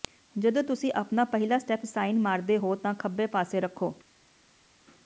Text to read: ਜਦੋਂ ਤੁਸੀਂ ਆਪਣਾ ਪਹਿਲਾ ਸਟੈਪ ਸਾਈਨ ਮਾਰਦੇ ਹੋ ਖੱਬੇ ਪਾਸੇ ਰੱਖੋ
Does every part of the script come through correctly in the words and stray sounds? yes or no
no